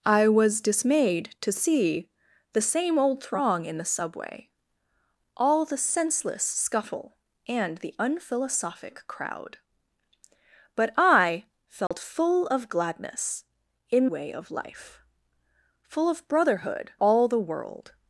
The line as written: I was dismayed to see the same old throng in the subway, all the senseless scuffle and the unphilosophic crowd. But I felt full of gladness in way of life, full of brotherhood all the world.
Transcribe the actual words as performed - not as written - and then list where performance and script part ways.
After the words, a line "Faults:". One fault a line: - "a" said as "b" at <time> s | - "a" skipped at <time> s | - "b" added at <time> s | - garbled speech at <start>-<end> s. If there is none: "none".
I was dismayed to see the same old throng in the subway, all the senseless scuffle and the unphilosophic crowd. But I felt full of gladness in way of life, full of brotherhood all the world.
Faults:
none